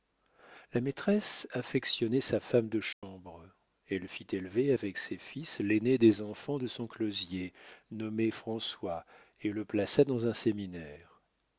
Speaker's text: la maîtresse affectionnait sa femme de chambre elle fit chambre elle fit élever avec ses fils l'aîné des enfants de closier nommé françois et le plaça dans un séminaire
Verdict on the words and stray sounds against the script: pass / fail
fail